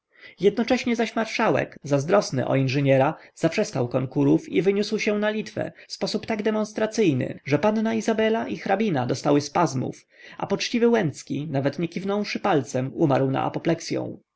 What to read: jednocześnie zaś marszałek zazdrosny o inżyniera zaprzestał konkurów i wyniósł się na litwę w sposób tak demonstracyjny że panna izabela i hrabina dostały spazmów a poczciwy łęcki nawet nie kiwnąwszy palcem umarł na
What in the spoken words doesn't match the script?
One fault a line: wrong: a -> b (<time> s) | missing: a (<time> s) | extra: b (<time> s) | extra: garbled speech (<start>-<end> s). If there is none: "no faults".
no faults